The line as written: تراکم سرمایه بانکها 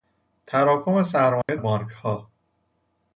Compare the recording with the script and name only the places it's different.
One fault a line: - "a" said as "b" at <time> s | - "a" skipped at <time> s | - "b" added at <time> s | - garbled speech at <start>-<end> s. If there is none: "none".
none